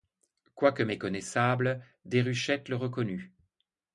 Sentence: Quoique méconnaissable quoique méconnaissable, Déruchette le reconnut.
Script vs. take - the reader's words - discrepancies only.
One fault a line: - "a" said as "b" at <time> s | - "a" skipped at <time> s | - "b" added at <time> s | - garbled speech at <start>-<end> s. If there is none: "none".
- "quoique méconnaissable" skipped at 1.9 s